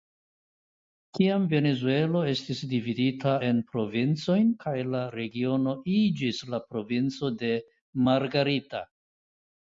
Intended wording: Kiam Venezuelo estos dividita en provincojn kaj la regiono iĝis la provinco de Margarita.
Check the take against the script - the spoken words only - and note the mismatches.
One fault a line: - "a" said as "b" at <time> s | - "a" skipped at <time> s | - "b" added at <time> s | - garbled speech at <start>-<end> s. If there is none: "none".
- "estos" said as "estis" at 2.3 s